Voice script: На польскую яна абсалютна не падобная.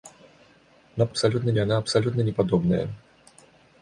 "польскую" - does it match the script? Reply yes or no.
no